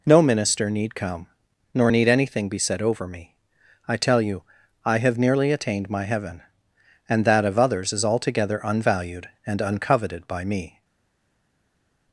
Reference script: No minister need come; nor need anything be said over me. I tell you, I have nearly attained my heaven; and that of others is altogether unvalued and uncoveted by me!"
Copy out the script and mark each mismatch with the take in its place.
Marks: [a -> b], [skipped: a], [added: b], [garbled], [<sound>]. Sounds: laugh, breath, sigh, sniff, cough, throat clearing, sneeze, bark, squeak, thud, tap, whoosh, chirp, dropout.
No minister need come; nor need anything be said over me. I tell you, I have nearly attained my heaven; and that of others is altogether unvalued and uncoveted by me!"